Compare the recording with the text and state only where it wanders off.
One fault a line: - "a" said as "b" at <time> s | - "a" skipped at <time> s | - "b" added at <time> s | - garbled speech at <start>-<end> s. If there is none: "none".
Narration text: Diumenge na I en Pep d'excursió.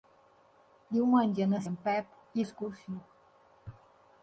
none